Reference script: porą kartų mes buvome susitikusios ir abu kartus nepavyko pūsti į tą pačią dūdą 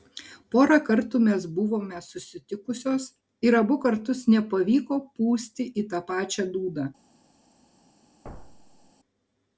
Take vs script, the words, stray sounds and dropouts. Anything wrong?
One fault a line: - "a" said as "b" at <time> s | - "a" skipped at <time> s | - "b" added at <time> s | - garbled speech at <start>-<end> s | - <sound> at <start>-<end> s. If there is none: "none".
- thud at 8.2-8.9 s